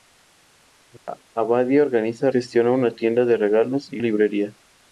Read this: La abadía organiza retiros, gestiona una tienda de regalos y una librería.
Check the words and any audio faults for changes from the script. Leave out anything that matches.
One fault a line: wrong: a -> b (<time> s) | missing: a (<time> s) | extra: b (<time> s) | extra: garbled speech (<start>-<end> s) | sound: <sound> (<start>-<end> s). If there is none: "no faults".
sound: dropout (1.0-1.1 s)
missing: retiros (2.3 s)
missing: una (4.0 s)